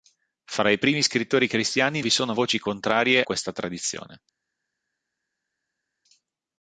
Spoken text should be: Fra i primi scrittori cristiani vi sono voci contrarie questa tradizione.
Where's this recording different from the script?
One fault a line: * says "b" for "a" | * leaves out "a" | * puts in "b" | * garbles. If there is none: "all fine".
all fine